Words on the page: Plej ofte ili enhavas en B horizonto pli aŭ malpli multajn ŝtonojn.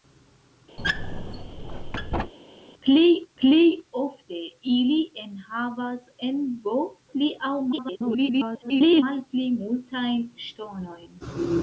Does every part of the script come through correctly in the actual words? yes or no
no